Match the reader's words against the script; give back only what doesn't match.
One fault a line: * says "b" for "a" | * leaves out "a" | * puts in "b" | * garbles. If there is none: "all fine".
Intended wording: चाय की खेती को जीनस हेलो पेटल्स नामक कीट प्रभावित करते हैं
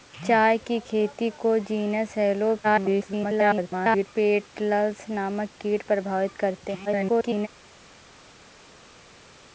* garbles
* garbles